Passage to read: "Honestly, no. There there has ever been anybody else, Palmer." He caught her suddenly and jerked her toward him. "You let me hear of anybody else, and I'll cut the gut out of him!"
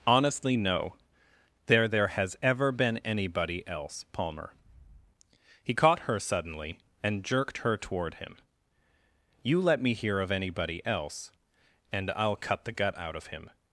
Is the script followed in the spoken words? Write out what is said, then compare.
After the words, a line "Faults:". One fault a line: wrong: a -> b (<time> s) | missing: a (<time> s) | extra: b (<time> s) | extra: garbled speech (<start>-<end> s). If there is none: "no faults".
"Honestly, no. There there has ever been anybody else, Palmer." He caught her suddenly and jerked her toward him. "You let me hear of anybody else, and I'll cut the gut out of him!"
Faults:
no faults